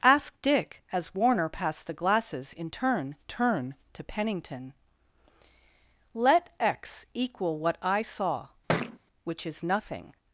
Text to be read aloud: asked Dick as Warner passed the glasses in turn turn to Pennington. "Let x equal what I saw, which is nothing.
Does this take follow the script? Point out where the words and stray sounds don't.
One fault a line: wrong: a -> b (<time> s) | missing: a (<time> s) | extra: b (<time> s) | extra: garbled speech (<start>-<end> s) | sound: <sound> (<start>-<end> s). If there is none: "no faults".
sound: thud (8.7-9.0 s)